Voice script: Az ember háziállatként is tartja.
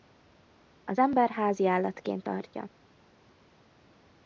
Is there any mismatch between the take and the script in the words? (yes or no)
yes